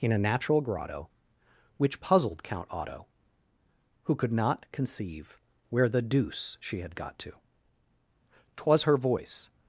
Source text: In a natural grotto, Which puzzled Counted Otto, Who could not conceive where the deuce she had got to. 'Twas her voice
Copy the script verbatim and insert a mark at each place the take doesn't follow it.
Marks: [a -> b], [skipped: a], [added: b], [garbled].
In a natural grotto, Which puzzled [Counted -> Count] Otto, Who could not conceive where the deuce she had got to. 'Twas her voice